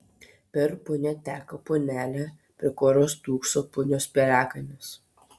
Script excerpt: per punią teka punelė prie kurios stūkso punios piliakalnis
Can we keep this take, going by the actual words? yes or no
yes